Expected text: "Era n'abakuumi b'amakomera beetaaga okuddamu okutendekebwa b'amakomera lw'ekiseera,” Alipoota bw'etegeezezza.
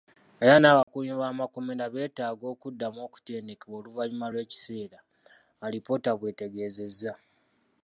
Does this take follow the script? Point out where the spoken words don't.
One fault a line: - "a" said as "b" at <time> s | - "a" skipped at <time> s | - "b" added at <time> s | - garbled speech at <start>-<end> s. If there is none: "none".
- "b'amakomera" said as "oluvannyuma" at 3.8 s